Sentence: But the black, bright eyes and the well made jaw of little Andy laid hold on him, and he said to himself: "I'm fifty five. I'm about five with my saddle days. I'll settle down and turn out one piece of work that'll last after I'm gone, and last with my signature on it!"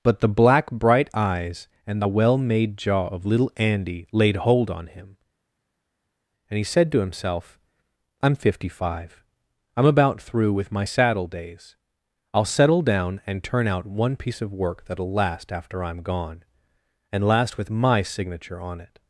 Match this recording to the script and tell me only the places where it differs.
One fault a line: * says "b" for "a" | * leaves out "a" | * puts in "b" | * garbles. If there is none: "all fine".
* says "through" for "five"